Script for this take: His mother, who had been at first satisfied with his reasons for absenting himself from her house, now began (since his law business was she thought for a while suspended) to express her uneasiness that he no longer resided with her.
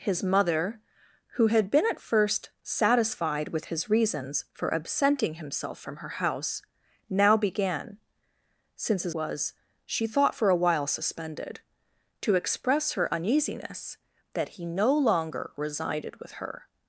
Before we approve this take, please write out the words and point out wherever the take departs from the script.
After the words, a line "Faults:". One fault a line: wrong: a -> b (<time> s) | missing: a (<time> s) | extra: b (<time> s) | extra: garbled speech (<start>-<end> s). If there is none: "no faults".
His mother, who had been at first satisfied with his reasons for absenting himself from her house, now began (since his was she thought for a while suspended) to express her uneasiness that he no longer resided with her.
Faults:
missing: law business (9.2 s)